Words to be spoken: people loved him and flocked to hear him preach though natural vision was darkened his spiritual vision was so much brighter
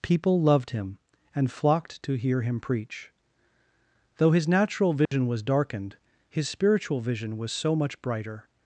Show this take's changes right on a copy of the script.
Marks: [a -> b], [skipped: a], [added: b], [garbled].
people loved him and flocked to hear him preach though [added: his] natural vision was darkened his spiritual vision was so much brighter